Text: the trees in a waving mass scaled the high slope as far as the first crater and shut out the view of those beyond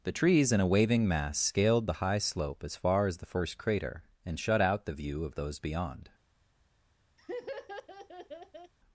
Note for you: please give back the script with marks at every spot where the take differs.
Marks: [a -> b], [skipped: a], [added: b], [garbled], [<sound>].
the trees in a waving mass scaled the high slope as far as the first crater and shut out the view of those beyond [laugh]